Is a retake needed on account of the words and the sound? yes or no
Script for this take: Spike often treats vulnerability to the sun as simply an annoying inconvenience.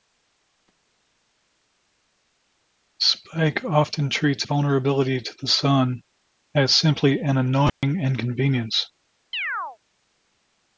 yes